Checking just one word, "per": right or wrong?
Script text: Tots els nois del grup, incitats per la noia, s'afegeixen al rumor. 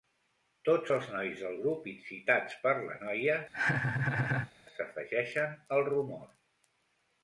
right